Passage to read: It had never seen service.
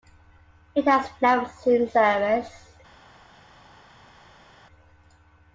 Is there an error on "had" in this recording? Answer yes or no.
yes